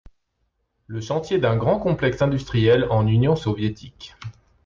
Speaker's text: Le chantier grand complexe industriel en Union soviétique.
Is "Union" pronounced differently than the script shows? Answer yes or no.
no